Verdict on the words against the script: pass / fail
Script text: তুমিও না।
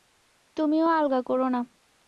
fail